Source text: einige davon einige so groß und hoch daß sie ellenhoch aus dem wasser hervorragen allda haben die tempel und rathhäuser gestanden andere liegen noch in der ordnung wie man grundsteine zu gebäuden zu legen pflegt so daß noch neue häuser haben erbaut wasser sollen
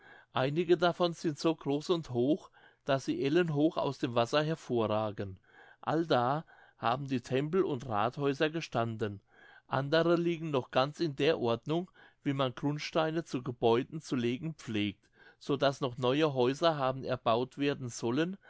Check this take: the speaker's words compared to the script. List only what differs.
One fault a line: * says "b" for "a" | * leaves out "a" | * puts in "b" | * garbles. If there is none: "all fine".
* says "sind" for "einige"
* puts in "ganz"
* says "werden" for "wasser"